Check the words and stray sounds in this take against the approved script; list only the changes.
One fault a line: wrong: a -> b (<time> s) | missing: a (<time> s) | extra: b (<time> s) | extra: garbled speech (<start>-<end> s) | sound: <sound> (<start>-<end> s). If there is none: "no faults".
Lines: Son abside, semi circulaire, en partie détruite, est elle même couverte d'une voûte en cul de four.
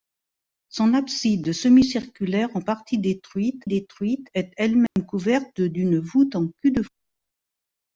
extra: détruite (3.6 s)
sound: dropout (4.9-5.0 s)